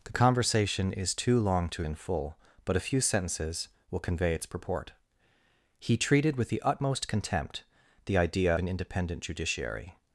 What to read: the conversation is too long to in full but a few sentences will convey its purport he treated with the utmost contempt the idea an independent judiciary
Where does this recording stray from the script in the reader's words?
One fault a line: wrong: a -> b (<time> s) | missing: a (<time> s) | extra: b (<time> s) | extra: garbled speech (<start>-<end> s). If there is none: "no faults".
no faults